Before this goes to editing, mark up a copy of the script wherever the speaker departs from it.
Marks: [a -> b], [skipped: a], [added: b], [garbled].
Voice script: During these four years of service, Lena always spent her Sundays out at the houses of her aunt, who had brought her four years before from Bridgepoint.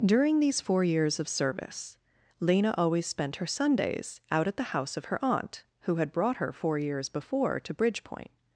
During these four years of service, Lena always spent her Sundays out at the [houses -> house] of her aunt, who had brought her four years before [from -> to] Bridgepoint.